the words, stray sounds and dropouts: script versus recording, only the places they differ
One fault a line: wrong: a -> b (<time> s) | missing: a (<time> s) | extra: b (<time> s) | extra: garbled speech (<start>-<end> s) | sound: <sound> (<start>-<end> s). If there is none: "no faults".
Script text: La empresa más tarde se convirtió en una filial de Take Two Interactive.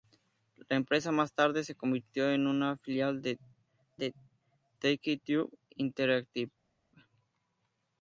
extra: de (4.0 s)